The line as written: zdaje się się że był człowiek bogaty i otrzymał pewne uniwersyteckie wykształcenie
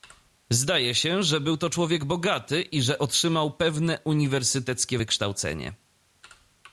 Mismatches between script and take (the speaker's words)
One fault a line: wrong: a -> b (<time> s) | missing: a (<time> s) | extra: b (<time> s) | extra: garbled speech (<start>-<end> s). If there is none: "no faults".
missing: się (1.2 s)
extra: to (1.6 s)
extra: że (2.8 s)